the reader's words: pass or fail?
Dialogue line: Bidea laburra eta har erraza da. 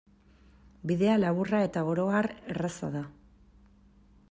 fail